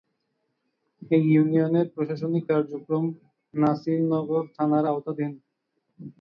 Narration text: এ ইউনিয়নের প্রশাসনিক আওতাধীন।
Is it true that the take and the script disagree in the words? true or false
true